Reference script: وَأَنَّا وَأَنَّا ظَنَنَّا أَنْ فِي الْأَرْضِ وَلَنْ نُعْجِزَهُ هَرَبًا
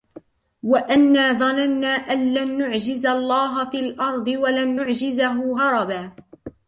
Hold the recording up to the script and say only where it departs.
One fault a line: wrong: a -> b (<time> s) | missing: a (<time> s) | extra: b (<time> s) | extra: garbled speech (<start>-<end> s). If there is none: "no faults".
missing: وَأَنَّا (1.3 s)
extra: لَنْ نُعْجِزَ اللَّهَ (2.3 s)